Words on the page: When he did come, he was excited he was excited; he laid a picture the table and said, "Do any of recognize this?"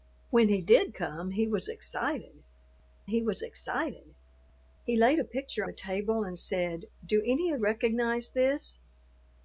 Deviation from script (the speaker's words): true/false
false